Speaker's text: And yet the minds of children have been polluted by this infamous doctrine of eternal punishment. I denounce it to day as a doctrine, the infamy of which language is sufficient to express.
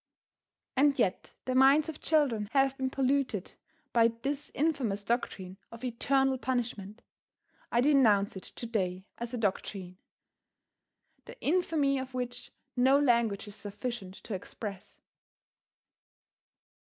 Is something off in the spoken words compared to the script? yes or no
yes